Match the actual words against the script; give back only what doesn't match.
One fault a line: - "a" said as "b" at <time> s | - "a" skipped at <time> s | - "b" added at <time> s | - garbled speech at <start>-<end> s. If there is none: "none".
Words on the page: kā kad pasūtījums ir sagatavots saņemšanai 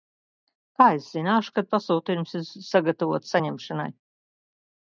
- "es zināšu" added at 1.0 s